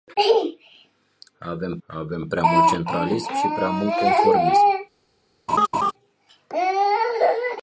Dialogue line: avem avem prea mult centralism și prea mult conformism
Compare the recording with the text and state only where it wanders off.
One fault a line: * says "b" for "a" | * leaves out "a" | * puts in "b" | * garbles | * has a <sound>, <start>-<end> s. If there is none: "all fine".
* has a laugh, 5.5-5.9 s